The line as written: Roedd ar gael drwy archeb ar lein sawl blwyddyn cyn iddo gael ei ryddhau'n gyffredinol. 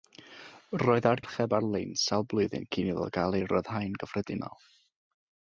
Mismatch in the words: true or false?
true